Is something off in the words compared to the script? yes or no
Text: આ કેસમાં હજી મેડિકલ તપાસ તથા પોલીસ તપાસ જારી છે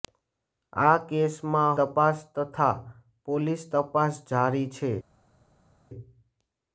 yes